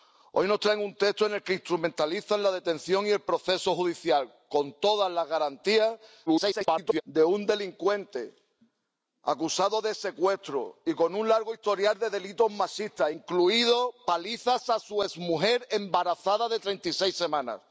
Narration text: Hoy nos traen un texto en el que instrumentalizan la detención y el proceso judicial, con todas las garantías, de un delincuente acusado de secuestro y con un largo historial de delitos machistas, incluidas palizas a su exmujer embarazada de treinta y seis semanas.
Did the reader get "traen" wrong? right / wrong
right